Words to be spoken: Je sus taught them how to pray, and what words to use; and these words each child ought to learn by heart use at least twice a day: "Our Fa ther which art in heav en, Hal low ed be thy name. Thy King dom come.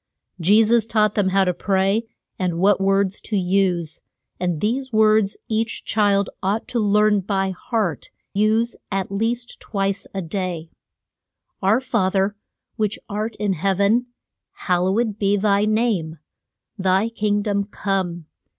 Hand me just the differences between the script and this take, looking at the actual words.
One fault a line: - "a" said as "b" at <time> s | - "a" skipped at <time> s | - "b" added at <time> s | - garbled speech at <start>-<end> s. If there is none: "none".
none